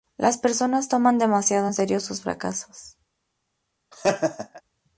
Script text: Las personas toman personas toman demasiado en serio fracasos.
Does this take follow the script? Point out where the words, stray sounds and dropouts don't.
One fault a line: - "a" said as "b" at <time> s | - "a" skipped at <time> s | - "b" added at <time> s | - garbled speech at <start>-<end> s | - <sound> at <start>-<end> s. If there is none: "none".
- "personas toman" skipped at 1.2 s
- "sus" added at 2.0 s
- laugh at 3.9-4.6 s